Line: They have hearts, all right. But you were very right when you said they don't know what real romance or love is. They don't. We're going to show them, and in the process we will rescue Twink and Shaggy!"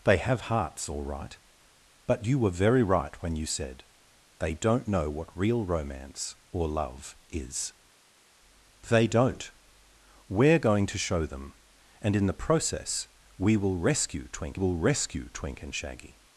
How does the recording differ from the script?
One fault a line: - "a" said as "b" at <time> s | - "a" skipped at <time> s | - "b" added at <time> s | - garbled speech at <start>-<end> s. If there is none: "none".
- "will rescue Twink" added at 14.5 s